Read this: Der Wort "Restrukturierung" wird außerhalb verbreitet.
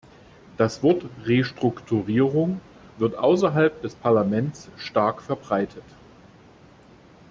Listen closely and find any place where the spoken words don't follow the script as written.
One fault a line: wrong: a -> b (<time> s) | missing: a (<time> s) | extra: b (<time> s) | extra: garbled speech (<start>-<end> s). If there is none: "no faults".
wrong: Der -> Das (0.6 s)
extra: des Parlaments stark (3.8 s)